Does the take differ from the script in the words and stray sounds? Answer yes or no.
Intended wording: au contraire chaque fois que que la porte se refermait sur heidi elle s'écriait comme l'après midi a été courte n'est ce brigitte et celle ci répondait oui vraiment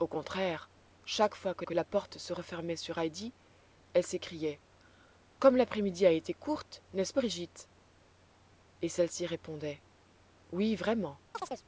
yes